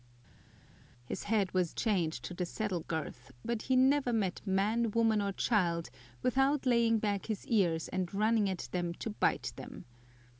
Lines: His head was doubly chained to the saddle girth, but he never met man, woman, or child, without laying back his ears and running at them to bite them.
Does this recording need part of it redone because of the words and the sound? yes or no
yes